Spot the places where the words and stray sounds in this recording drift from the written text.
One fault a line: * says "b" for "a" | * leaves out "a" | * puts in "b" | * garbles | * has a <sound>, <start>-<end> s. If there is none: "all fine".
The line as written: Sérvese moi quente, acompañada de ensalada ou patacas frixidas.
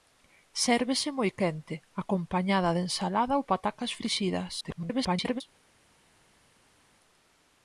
* garbles